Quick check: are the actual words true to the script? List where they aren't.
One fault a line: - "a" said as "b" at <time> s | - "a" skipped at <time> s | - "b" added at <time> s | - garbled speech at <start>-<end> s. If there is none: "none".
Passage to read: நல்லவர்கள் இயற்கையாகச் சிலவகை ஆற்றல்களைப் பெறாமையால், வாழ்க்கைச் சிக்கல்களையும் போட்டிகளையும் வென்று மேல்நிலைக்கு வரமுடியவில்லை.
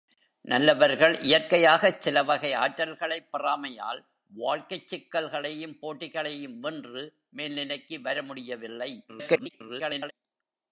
- garbled speech at 9.1-10.1 s